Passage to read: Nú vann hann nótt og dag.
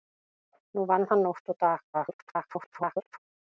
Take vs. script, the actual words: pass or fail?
fail